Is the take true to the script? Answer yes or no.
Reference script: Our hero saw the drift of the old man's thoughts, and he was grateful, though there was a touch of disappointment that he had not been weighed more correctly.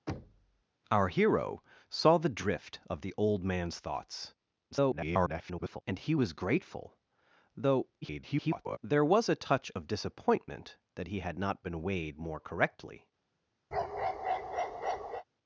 no